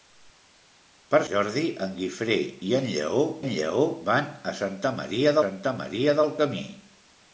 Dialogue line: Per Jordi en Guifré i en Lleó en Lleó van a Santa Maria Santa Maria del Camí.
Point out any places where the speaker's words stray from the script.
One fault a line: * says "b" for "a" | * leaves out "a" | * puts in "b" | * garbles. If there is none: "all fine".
all fine